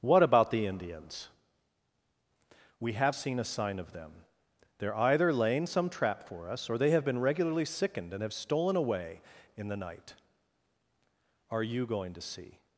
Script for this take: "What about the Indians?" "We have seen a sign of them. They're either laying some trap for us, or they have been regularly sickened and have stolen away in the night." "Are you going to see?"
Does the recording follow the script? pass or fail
pass